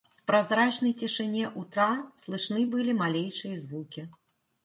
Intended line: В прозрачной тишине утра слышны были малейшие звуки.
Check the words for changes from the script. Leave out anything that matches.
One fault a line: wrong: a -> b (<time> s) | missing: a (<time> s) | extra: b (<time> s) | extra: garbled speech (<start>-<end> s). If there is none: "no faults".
no faults